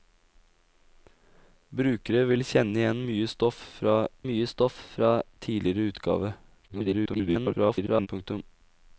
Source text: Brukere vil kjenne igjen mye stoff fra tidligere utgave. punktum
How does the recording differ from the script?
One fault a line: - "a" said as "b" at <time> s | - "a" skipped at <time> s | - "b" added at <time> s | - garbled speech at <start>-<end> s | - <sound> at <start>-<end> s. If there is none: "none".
- "mye stoff fra" added at 4.3 s
- garbled speech at 6.7-8.1 s